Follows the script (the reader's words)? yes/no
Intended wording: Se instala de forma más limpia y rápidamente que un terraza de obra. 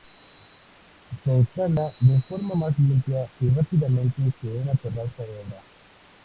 no